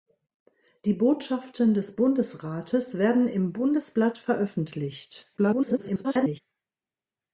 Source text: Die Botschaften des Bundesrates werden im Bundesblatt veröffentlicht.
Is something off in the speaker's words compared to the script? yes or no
yes